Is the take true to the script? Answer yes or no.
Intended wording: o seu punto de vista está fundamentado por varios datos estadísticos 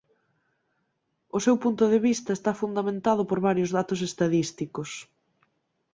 yes